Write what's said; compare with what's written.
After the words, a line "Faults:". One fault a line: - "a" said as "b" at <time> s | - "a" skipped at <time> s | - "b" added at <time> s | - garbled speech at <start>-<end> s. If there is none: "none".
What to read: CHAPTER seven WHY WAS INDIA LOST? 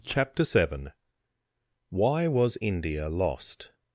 CHAPTER seven WHY WAS INDIA LOST?
Faults:
none